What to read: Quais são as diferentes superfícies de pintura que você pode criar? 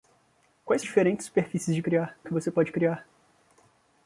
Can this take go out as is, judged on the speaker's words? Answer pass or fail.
fail